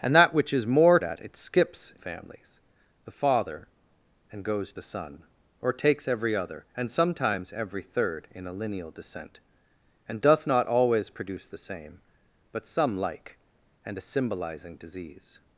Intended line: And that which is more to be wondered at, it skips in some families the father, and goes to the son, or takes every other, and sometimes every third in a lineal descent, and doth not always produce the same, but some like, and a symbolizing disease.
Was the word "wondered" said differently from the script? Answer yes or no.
yes